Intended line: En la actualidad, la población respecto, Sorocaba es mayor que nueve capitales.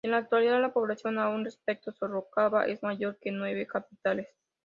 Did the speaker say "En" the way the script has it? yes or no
yes